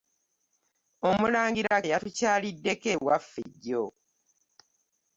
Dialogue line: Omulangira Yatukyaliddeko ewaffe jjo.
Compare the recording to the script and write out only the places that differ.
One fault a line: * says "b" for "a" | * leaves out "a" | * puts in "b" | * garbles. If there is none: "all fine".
all fine